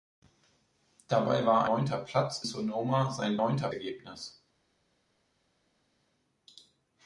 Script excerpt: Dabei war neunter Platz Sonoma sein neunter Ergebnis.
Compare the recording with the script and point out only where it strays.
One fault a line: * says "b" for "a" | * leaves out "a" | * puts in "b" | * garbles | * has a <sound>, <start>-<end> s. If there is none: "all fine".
all fine